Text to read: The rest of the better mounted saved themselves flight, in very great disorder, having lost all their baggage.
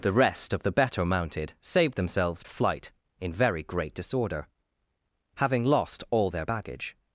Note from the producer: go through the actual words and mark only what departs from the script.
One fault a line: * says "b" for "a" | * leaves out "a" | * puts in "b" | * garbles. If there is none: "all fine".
all fine